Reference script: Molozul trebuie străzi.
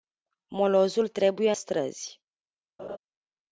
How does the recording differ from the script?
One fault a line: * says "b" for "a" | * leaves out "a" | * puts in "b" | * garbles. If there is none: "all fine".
all fine